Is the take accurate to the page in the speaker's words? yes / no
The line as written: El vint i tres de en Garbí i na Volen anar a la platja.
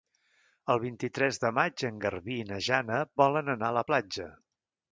no